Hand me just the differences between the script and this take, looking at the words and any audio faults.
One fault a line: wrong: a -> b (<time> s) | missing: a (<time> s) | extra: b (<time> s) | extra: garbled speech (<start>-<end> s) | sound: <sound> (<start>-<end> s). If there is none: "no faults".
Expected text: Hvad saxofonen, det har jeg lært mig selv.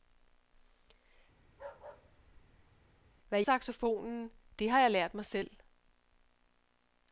sound: bark (1.4-2.9 s)